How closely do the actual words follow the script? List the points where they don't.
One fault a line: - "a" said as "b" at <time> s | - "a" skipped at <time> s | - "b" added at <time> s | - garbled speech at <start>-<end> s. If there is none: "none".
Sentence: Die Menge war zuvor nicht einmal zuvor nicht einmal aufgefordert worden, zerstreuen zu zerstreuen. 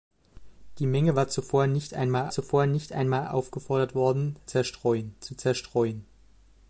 none